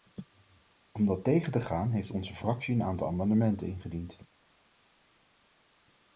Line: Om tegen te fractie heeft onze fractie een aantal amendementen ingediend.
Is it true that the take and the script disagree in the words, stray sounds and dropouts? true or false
true